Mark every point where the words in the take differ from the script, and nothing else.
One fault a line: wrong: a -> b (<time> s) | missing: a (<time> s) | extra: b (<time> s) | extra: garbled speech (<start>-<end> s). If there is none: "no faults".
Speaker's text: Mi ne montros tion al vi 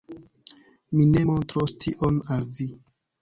no faults